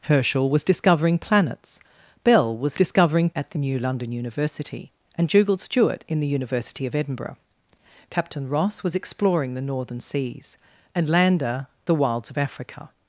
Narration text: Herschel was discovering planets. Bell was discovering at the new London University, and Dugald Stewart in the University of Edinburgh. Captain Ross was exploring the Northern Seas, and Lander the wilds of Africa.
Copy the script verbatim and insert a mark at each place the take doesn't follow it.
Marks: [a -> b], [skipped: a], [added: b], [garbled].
Herschel was discovering planets. Bell was discovering at the new London University, and Dugald Stewart in the University of Edinburgh. Captain Ross was exploring the Northern Seas, and Lander the wilds of Africa.